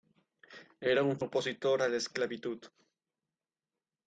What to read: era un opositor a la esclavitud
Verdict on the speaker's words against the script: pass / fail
pass